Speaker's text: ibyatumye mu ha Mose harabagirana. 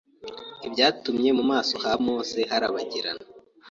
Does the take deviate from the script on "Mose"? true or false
false